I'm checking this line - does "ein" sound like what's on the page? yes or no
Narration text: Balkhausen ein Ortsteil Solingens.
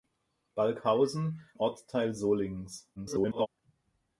no